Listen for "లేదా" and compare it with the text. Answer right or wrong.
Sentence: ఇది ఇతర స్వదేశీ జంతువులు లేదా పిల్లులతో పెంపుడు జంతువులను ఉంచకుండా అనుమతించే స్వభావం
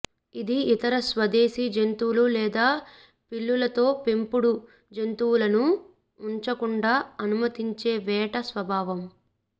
right